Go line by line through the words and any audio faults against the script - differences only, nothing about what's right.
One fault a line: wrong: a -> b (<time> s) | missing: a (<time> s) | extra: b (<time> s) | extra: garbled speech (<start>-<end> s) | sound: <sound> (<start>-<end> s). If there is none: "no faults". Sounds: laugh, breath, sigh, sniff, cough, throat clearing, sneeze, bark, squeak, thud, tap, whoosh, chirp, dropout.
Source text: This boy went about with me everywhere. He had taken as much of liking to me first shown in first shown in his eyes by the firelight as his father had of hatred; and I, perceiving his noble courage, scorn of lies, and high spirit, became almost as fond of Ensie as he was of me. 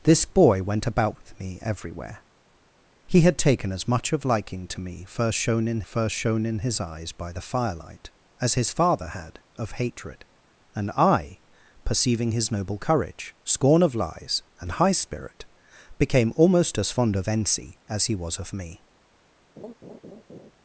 sound: laugh (19.6-20.5 s)